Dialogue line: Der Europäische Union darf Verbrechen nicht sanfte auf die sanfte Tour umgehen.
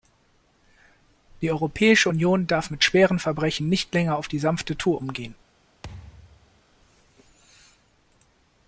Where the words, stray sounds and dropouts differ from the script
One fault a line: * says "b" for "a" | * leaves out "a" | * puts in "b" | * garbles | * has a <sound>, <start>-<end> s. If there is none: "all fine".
* says "Die" for "Der"
* puts in "mit schweren"
* says "länger" for "sanfte"
* has a thud, 5.8-6.6 s